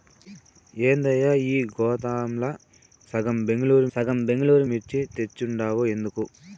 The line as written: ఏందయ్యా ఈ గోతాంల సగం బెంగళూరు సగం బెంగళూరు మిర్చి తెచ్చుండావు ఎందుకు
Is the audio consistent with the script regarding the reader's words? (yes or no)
yes